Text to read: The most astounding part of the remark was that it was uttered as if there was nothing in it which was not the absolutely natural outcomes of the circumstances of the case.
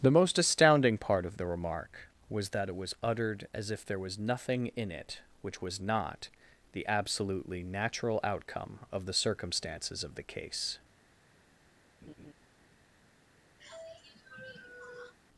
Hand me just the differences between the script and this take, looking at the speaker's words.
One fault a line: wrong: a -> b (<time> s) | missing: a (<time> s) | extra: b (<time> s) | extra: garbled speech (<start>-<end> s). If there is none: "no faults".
wrong: outcomes -> outcome (8.2 s)